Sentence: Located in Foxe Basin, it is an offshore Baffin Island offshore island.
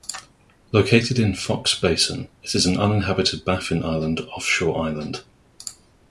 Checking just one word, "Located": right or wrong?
right